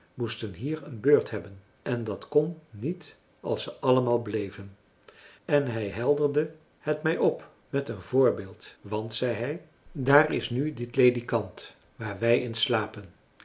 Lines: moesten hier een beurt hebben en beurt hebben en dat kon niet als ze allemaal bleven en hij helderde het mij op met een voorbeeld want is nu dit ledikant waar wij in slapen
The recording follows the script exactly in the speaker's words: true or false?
false